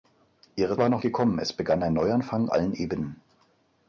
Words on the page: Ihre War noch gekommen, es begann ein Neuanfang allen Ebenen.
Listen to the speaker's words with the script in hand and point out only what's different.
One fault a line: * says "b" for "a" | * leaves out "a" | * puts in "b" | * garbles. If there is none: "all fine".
all fine